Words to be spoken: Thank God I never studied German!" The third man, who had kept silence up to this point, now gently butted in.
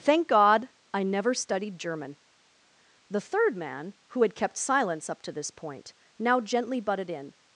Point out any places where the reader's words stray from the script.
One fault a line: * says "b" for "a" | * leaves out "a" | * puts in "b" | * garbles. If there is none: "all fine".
all fine